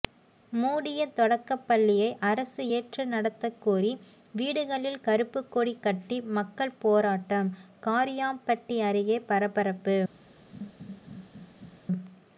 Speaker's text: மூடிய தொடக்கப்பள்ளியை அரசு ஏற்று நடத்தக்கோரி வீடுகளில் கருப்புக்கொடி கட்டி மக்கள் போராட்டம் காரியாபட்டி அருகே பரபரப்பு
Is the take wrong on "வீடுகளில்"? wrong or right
right